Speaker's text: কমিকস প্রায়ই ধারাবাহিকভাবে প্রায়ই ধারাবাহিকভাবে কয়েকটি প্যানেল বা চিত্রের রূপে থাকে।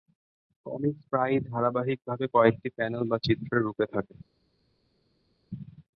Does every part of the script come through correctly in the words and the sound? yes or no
no